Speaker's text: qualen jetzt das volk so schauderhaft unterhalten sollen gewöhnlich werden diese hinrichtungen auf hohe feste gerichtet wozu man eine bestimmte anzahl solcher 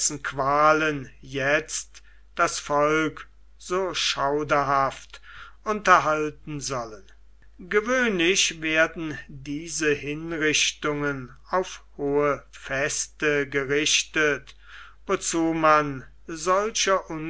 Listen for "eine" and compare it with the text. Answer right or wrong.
wrong